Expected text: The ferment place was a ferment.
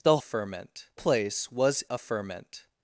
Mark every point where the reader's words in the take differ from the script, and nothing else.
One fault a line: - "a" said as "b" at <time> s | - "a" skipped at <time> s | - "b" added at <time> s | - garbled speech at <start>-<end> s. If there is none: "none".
none